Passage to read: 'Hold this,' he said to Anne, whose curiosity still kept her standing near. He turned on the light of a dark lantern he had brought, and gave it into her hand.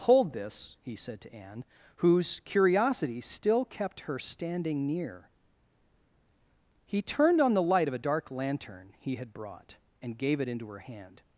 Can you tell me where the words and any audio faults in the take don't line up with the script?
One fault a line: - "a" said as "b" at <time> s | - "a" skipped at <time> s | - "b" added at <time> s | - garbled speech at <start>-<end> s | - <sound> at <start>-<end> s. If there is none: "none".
none